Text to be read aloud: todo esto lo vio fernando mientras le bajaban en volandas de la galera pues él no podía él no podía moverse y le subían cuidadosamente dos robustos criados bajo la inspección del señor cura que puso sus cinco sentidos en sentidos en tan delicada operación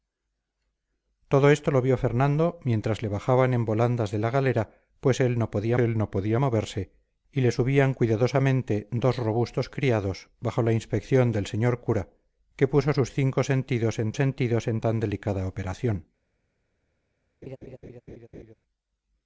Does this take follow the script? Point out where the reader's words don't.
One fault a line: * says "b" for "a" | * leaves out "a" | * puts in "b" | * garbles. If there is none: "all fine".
all fine